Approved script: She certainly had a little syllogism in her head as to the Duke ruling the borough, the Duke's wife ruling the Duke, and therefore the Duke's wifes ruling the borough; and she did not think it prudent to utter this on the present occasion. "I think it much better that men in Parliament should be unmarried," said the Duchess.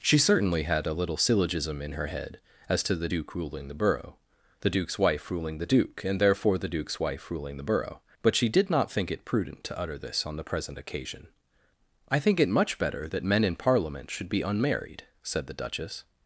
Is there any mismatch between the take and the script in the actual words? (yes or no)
yes